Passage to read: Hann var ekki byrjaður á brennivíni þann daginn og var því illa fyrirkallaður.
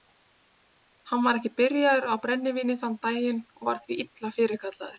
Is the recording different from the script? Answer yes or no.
no